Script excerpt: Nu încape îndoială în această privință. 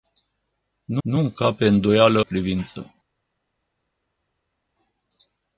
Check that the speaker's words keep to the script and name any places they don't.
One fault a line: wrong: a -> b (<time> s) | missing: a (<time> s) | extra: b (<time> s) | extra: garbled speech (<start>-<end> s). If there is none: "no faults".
extra: nu (1.0 s)
missing: în această (2.2 s)